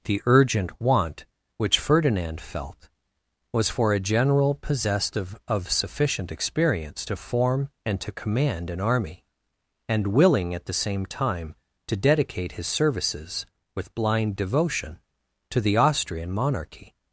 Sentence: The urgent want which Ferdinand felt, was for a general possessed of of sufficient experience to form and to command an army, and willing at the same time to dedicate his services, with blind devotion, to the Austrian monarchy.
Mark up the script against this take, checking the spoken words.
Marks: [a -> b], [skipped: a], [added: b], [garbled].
The urgent want which Ferdinand felt, was for a general possessed of of sufficient experience to form and to command an army, and willing at the same time to dedicate his services, with blind devotion, to the Austrian monarchy.